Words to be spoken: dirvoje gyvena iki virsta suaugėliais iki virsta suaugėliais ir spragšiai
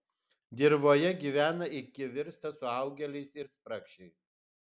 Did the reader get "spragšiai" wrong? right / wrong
right